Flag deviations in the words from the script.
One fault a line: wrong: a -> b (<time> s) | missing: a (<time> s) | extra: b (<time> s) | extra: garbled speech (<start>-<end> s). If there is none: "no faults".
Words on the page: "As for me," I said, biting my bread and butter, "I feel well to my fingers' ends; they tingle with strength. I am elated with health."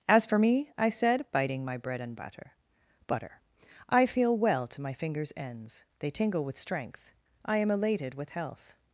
extra: butter (3.1 s)